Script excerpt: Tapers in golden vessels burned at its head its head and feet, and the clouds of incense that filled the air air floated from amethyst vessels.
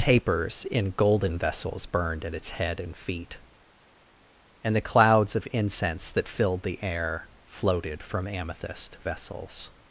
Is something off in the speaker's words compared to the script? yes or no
yes